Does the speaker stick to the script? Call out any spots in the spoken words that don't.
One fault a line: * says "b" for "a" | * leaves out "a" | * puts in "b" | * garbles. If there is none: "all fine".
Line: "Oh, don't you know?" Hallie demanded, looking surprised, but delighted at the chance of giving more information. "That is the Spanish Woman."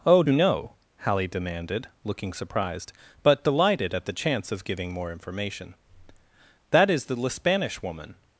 * leaves out "don't"